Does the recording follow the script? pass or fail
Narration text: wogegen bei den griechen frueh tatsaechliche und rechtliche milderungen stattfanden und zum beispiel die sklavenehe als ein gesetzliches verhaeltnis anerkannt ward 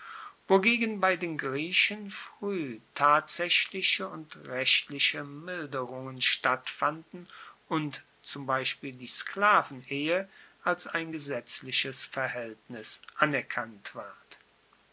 pass